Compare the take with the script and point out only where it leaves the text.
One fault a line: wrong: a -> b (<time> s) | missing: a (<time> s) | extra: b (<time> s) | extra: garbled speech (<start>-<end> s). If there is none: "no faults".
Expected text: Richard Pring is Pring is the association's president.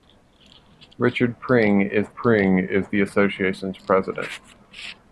no faults